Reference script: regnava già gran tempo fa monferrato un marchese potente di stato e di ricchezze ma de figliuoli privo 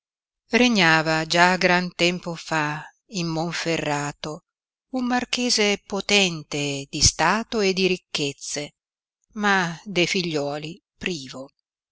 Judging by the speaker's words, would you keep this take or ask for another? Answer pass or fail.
fail